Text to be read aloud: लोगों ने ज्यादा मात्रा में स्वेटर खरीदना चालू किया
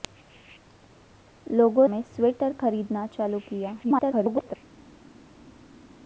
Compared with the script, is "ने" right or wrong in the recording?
wrong